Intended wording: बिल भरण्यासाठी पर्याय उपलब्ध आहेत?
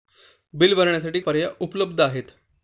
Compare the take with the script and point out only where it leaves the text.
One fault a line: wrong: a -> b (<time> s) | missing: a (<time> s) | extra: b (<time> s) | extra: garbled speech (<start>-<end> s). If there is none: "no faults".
no faults